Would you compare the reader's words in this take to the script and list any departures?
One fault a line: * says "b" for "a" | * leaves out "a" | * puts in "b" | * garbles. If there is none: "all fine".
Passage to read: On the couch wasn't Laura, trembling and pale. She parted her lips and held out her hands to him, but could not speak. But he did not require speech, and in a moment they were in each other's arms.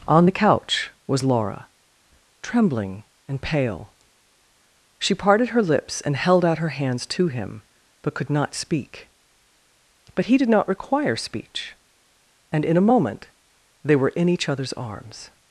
* says "was" for "wasn't"